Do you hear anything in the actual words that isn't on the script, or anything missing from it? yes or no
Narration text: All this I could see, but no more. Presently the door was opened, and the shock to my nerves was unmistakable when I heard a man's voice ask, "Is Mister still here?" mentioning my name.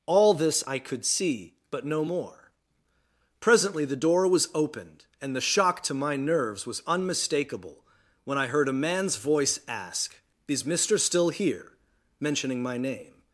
no